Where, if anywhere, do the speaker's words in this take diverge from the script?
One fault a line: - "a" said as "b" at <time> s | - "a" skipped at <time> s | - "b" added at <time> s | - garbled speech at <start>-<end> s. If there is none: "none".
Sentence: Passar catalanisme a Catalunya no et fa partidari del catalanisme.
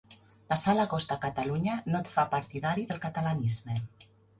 - "catalanisme" said as "l'agost" at 0.8 s